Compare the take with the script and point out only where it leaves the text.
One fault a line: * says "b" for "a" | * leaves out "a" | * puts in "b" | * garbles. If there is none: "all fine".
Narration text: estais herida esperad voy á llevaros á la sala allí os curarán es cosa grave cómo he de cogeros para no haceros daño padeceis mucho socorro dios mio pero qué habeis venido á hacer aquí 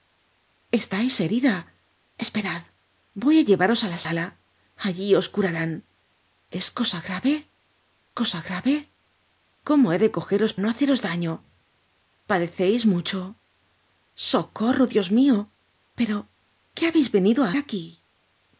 * puts in "cosa grave"
* leaves out "para"
* leaves out "hacer"